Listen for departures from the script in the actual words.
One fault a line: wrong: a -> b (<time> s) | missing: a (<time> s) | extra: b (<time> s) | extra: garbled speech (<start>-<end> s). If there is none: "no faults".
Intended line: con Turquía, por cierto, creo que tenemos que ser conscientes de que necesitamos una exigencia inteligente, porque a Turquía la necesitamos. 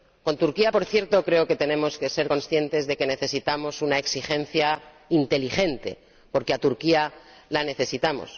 no faults